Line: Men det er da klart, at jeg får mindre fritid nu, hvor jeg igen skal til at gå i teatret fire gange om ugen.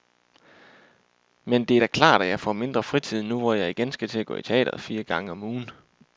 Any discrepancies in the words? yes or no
no